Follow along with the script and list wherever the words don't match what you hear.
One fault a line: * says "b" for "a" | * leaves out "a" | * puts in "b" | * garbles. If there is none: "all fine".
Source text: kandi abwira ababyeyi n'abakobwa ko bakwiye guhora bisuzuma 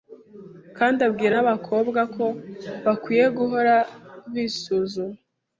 * leaves out "ababyeyi"